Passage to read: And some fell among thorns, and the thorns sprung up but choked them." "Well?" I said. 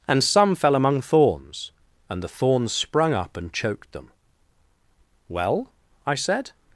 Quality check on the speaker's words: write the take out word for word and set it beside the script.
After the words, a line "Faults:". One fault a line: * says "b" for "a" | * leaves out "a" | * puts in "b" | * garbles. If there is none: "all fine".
And some fell among thorns, and the thorns sprung up and choked them." "Well?" I said.
Faults:
* says "and" for "but"